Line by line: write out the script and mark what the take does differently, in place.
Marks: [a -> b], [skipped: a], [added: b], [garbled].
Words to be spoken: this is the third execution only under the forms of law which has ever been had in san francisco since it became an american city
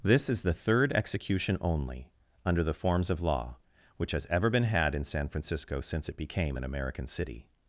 this is the third execution only under the forms of law which has ever been had in san francisco since it became an american city